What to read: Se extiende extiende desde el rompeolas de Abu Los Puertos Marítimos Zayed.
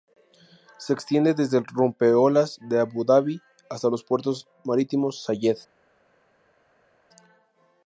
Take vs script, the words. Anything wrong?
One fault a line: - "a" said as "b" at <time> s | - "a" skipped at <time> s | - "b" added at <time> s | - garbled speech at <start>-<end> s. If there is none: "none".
- "extiende" skipped at 1.4 s
- "Dabi hasta" added at 3.0 s